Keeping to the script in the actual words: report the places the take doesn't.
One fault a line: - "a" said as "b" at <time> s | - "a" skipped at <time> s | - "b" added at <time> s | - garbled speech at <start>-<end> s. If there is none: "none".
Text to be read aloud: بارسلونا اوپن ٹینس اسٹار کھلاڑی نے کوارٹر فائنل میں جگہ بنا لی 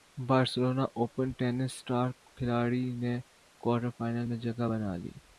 none